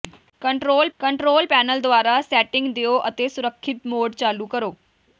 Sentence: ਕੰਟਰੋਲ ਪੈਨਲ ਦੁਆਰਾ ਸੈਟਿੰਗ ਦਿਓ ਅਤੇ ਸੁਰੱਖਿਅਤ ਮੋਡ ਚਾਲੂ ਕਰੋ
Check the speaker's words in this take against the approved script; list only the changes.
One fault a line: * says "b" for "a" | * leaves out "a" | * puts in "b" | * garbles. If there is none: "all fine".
* puts in "ਕੰਟਰੋਲ"